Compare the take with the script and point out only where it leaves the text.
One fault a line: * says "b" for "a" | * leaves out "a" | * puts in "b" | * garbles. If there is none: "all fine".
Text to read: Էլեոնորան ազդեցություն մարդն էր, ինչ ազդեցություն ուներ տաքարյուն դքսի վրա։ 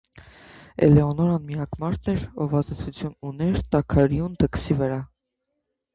* says "միակ" for "ազդեցություն"
* says "ով" for "ինչ"